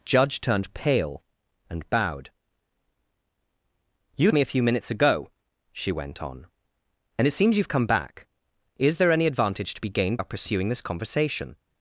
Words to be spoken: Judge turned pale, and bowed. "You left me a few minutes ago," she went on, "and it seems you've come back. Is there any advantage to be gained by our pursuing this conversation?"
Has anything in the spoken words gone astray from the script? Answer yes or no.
yes